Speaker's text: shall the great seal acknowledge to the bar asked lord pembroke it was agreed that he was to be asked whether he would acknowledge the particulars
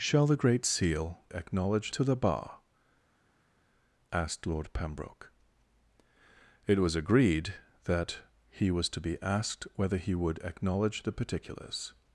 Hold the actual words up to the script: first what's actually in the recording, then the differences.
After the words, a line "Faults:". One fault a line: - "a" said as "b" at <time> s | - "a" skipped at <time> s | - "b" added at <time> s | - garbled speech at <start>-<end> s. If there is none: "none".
shall the great seal acknowledge to the bar asked lord pembroke it was agreed that he was to be asked whether he would acknowledge the particulars
Faults:
none